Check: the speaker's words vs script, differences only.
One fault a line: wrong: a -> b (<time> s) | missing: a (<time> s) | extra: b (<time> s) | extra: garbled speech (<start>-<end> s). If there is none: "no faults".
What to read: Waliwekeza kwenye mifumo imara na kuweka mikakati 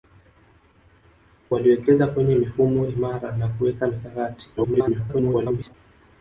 extra: garbled speech (4.6-5.7 s)